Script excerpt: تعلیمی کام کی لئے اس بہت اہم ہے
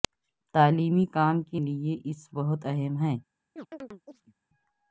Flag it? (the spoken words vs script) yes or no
no